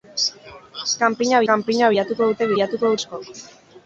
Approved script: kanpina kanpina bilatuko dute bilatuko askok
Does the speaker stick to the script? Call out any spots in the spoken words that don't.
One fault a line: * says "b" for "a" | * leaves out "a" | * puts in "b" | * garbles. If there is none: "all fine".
all fine